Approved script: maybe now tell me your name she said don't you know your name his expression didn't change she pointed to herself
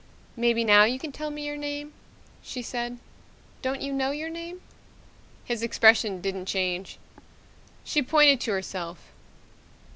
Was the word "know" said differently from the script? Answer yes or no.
no